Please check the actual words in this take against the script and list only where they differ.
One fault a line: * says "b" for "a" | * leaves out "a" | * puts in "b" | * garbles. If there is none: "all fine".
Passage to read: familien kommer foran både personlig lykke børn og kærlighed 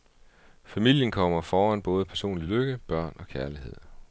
all fine